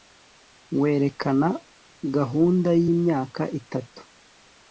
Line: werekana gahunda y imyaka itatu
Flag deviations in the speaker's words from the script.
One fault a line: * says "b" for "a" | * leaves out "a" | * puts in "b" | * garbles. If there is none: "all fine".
all fine